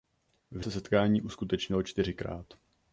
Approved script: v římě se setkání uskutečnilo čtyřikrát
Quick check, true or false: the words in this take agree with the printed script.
false